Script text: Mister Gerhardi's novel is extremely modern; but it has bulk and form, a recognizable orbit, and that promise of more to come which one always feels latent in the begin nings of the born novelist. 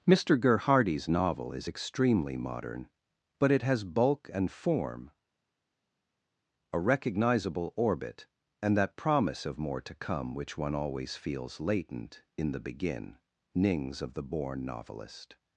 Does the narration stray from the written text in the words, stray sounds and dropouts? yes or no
no